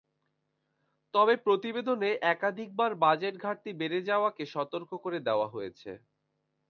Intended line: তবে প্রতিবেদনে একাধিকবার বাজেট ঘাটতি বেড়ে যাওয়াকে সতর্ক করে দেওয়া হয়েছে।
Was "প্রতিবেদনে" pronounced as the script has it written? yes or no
yes